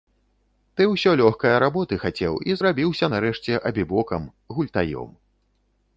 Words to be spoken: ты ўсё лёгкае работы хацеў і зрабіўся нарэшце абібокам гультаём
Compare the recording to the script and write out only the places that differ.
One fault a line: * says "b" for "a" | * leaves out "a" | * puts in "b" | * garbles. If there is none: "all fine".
all fine